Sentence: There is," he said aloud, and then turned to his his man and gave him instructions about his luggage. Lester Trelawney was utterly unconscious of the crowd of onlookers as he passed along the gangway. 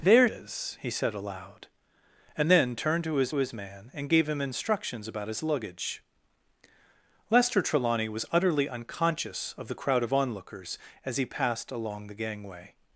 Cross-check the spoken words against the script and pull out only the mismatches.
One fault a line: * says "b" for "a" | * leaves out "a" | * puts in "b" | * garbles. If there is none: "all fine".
all fine